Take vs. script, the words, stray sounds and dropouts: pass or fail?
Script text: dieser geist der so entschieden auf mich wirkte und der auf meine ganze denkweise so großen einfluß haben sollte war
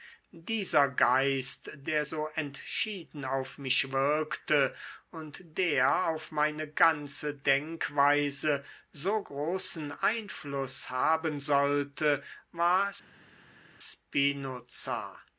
pass